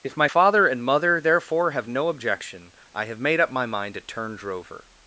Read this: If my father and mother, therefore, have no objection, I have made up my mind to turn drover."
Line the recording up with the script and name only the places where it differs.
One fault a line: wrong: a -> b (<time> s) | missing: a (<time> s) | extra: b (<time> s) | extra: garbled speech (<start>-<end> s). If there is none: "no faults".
no faults